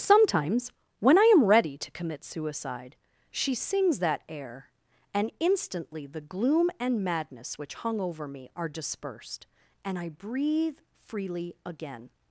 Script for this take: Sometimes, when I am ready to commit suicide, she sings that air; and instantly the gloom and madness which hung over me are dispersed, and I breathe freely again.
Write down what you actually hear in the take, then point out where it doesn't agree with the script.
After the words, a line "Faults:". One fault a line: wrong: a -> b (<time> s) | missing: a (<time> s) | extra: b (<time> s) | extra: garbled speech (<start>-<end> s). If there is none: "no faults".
Sometimes, when I am ready to commit suicide, she sings that air; and instantly the gloom and madness which hung over me are dispersed, and I breathe freely again.
Faults:
no faults